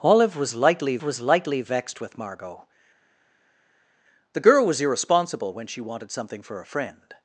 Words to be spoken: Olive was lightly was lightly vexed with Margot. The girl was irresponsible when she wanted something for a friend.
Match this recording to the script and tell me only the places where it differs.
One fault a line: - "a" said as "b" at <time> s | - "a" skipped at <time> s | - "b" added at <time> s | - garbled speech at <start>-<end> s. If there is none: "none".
none